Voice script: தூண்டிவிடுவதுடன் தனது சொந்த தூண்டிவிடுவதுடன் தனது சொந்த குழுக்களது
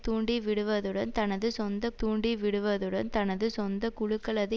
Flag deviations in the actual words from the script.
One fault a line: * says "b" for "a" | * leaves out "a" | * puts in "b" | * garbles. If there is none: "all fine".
all fine